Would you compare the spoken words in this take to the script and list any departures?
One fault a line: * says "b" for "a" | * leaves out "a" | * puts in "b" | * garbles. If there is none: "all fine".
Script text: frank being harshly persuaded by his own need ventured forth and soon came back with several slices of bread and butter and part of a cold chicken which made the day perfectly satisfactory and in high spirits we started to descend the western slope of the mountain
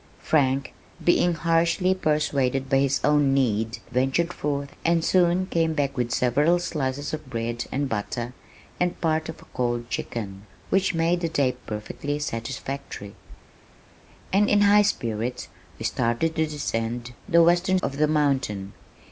* leaves out "slope"